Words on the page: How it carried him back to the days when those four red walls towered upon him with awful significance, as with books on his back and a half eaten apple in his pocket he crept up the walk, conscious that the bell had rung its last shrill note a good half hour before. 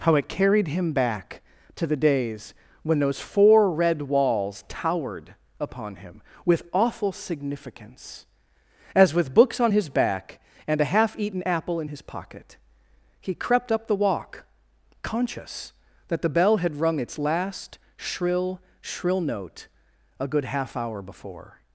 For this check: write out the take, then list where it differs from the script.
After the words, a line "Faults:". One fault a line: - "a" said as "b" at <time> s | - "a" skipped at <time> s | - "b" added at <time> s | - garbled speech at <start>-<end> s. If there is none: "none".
How it carried him back to the days when those four red walls towered upon him with awful significance, as with books on his back and a half eaten apple in his pocket he crept up the walk, conscious that the bell had rung its last shrill shrill note a good half hour before.
Faults:
- "shrill" added at 18.8 s